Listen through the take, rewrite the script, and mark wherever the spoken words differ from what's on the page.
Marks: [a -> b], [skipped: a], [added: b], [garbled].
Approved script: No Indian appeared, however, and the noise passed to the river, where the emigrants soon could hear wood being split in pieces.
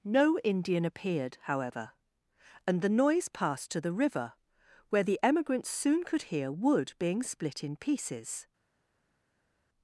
No Indian appeared, however, and the noise passed to the river, where the emigrants soon could hear wood being split in pieces.